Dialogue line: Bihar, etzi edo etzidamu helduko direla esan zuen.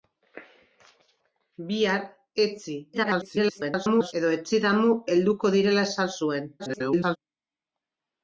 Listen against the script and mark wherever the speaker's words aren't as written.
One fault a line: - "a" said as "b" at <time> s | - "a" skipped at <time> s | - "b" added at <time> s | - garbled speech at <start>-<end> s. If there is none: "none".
- garbled speech at 2.9-4.1 s
- garbled speech at 6.6-7.2 s